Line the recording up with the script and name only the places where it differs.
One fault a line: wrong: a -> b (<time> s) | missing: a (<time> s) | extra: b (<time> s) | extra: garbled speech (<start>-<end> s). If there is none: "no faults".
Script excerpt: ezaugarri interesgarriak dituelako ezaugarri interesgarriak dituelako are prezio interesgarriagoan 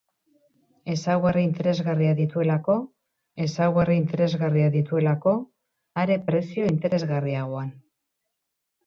no faults